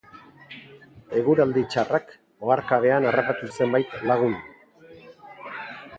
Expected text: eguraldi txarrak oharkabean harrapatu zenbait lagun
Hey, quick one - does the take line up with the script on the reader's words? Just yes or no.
yes